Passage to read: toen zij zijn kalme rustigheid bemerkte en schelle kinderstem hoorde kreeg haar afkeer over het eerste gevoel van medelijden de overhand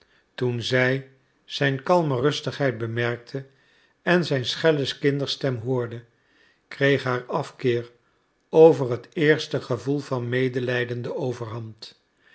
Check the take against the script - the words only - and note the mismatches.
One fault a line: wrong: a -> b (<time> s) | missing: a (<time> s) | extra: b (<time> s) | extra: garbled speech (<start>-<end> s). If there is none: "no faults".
extra: zijn (4.2 s)